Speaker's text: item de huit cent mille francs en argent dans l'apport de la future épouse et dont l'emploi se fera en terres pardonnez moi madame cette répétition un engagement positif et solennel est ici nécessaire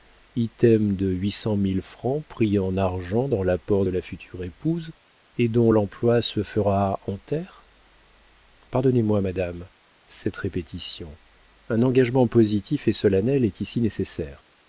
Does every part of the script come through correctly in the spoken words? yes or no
no